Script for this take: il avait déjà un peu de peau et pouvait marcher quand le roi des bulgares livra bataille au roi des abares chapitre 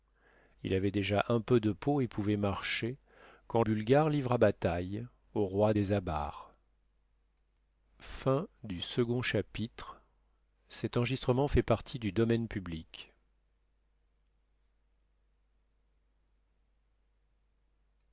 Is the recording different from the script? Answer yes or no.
yes